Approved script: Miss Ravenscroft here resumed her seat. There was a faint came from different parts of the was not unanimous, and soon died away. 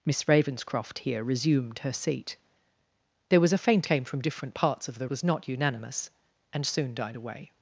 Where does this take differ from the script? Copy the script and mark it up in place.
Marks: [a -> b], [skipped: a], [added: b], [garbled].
Miss Ravenscroft here resumed her seat. There was a faint came from different parts of the was not unanimous, and soon died away.